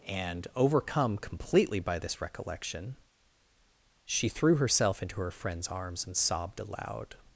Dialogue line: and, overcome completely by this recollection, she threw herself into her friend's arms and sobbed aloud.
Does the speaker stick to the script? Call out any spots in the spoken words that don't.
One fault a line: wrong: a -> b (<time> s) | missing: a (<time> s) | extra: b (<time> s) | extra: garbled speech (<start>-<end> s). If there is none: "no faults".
no faults